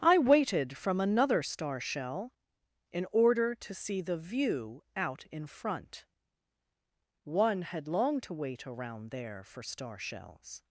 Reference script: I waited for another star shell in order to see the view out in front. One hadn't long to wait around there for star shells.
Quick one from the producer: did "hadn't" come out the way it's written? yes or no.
no